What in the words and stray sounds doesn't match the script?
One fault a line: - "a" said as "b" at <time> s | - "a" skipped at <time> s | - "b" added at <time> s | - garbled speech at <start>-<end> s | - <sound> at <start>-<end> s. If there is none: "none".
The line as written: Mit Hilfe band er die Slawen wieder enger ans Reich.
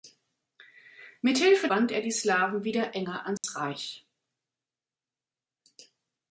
- dropout at 3.4-3.4 s